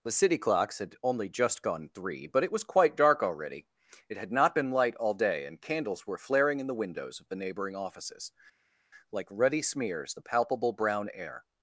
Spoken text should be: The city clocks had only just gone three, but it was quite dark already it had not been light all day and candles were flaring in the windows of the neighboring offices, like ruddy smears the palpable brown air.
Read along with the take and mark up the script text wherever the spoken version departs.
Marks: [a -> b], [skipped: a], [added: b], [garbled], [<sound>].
The city clocks had only just gone three, but it was quite dark already it had not been light all day and candles were flaring in the windows of the neighboring offices, like ruddy smears the palpable brown air.